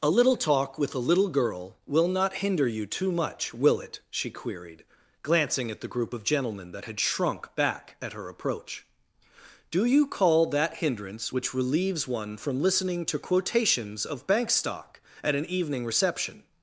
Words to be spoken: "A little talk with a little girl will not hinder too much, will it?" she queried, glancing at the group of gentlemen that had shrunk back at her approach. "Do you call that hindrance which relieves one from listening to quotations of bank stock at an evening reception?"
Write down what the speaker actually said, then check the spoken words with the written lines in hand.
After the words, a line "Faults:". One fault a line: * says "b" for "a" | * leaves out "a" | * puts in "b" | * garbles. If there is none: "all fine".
"A little talk with a little girl will not hinder you too much, will it?" she queried, glancing at the group of gentlemen that had shrunk back at her approach. "Do you call that hindrance which relieves one from listening to quotations of bank stock at an evening reception?"
Faults:
* puts in "you"